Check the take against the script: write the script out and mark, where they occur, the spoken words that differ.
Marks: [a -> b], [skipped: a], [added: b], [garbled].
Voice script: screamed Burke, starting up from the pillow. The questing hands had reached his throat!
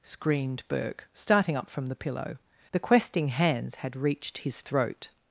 screamed Burke, starting up from the pillow. The questing hands had reached his throat!